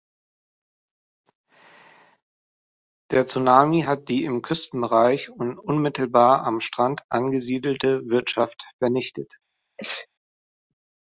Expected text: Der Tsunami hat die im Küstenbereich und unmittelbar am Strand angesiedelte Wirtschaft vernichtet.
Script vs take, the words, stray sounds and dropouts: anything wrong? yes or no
yes